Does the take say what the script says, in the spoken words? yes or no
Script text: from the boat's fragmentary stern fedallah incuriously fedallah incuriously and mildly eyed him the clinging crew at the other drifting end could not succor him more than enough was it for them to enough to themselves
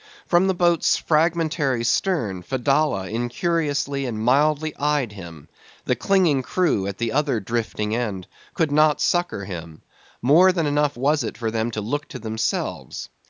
no